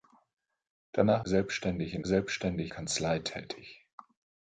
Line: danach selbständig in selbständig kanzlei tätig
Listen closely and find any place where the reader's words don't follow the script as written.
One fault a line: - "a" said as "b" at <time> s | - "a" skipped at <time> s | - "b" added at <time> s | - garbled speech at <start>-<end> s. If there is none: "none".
none